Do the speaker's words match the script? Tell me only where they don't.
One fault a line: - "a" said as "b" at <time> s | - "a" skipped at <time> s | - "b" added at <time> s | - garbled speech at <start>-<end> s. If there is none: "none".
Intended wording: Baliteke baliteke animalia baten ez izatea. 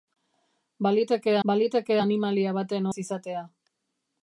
none